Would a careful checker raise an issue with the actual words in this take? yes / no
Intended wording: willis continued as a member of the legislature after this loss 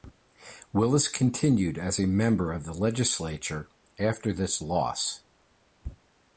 no